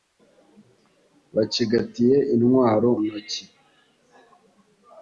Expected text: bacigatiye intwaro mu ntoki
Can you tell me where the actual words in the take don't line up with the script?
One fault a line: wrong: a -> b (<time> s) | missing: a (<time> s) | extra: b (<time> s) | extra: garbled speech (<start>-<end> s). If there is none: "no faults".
missing: mu (2.9 s)